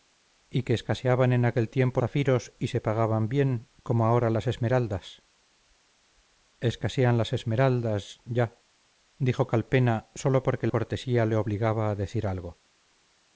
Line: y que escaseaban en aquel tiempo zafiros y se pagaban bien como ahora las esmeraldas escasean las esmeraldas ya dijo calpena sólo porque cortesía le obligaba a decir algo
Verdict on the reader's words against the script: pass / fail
pass